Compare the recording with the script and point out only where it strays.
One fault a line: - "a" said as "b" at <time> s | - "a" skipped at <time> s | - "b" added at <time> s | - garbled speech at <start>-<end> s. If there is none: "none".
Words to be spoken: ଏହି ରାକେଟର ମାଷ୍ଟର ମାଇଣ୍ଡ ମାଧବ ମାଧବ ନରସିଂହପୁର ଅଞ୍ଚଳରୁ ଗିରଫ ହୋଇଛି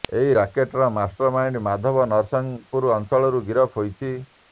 - "ମାଧବ" skipped at 2.1 s